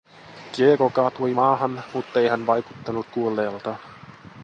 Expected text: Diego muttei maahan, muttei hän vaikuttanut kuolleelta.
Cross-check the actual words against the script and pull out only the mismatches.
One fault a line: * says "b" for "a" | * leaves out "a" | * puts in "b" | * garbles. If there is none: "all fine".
* says "kaatui" for "muttei"